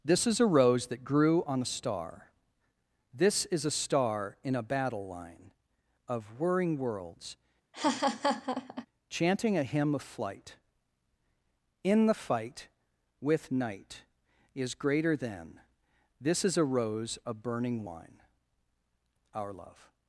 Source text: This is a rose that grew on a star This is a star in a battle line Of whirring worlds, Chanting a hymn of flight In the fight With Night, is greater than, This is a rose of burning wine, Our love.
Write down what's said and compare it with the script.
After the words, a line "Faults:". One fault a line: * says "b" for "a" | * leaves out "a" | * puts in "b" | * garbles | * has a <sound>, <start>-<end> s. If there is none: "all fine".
This is a rose that grew on a star This is a star in a battle line Of whirring worlds, Chanting a hymn of flight In the fight With Night, is greater than, This is a rose of burning wine, Our love.
Faults:
* has a laugh, 7.7-8.9 s